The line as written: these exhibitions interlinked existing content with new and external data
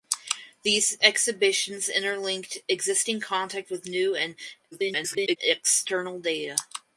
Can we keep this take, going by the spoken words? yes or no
no